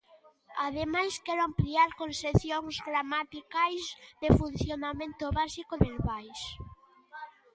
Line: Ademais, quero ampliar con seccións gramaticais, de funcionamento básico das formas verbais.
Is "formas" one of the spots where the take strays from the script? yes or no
yes